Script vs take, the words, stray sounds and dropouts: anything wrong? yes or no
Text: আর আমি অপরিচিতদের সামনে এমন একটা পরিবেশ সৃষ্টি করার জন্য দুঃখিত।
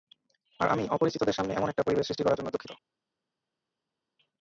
no